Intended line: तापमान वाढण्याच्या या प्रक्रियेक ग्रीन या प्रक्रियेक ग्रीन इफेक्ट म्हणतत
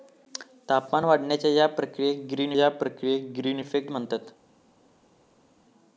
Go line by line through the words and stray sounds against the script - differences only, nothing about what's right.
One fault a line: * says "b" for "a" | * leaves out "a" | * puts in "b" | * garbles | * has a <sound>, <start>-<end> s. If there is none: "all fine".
all fine